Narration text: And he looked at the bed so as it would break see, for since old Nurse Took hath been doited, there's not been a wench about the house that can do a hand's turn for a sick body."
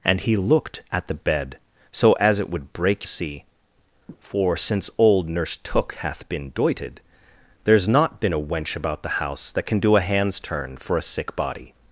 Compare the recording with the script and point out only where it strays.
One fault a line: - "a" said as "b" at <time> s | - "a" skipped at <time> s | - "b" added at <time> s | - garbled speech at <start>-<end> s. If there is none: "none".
none